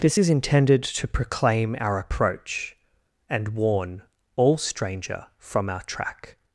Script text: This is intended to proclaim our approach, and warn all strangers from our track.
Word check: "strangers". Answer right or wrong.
wrong